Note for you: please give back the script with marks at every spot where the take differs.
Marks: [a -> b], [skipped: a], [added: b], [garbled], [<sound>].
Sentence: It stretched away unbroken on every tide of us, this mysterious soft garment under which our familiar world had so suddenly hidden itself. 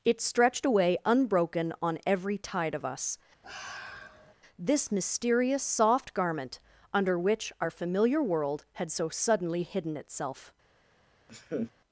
It stretched away unbroken on every tide of us, [sigh] this mysterious soft garment under which our familiar world had so suddenly hidden itself. [laugh]